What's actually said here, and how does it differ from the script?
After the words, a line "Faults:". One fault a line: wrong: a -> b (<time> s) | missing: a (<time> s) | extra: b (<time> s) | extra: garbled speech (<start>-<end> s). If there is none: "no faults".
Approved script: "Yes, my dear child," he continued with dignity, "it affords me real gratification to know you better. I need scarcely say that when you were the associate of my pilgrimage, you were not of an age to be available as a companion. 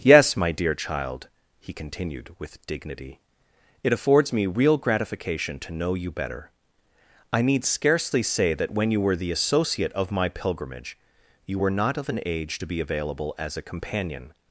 "Yes, my dear child," he continued with dignity, "it affords me real gratification to know you better. I need scarcely say that when you were the associate of my pilgrimage, you were not of an age to be available as a companion.
Faults:
no faults